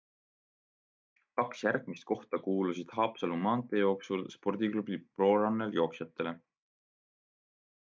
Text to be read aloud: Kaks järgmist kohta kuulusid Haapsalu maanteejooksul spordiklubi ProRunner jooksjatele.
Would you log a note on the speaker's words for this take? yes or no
no